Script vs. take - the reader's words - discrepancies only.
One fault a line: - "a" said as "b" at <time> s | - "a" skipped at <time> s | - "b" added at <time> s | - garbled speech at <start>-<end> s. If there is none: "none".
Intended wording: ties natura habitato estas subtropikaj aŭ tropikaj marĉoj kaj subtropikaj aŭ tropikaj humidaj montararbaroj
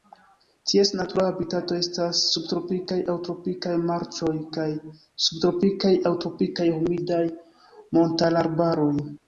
none